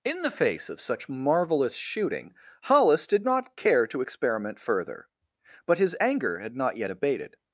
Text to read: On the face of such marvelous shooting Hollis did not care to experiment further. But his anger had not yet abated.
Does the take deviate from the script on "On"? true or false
true